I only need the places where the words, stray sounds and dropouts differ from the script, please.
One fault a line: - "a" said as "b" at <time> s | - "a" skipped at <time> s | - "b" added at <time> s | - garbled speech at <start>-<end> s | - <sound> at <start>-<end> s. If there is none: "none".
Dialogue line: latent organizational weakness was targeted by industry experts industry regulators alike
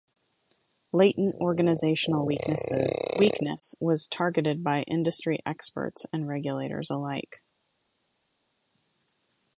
- "industry" said as "and" at 6.1 s